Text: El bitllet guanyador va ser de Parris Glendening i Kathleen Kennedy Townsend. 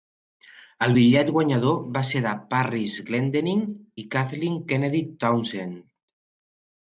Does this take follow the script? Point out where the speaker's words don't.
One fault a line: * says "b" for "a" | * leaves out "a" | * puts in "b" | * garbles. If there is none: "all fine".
all fine